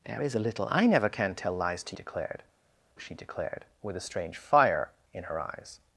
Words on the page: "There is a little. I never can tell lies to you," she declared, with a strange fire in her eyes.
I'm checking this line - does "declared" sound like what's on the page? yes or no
yes